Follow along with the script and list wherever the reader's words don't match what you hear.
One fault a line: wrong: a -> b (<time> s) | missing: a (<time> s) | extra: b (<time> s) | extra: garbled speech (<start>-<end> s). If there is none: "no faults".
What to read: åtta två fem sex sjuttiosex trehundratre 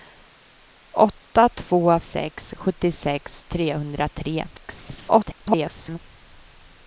missing: fem (2.0 s)
extra: garbled speech (4.5-6.0 s)